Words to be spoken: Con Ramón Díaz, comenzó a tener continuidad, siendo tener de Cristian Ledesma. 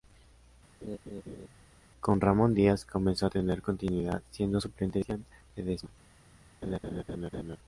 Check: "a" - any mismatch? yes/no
no